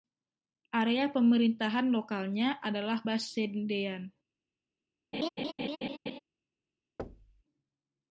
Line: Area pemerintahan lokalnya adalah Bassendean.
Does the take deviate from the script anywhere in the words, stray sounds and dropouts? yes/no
yes